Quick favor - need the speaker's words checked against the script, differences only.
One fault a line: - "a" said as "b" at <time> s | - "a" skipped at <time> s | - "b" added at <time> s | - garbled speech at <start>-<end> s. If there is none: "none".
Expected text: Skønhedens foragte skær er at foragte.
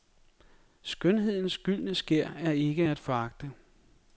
- "foragte" said as "gyldne" at 1.6 s
- "ikke" added at 2.5 s